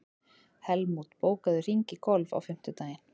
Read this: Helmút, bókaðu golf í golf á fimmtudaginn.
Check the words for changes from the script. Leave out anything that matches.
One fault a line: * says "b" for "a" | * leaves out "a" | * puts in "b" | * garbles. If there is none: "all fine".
* says "hring" for "golf"